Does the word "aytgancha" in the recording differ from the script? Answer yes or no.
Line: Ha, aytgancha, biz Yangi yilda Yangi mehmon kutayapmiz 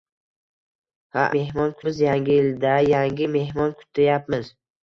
yes